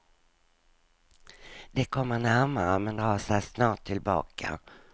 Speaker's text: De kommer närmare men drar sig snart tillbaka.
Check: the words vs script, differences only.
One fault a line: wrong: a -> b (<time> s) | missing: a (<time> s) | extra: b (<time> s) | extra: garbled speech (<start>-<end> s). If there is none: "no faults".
no faults